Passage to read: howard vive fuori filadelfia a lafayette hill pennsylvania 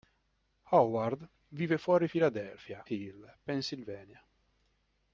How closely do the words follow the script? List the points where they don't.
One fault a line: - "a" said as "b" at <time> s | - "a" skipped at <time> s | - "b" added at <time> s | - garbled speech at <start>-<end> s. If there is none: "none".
- "a lafayette" skipped at 2.9 s